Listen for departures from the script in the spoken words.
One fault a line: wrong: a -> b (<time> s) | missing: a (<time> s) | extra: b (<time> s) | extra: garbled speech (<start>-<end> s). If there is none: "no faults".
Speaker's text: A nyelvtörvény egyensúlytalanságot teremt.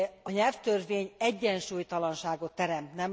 no faults